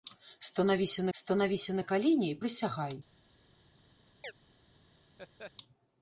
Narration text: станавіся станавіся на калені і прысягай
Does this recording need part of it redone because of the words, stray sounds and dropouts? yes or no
yes